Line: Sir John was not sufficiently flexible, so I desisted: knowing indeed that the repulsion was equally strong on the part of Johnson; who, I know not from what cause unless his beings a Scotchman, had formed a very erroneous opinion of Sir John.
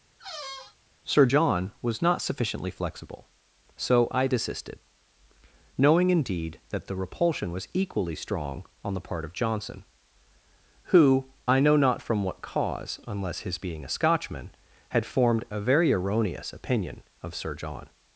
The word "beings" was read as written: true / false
false